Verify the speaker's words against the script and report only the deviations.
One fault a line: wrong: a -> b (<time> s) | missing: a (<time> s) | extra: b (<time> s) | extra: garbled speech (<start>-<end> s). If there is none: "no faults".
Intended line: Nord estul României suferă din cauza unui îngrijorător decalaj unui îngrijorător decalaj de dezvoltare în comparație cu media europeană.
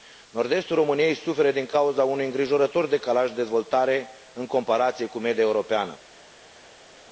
missing: unui îngrijorător decalaj (3.3 s)